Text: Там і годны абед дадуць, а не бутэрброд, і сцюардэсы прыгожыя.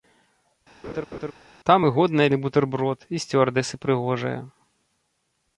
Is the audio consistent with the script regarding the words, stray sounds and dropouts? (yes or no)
no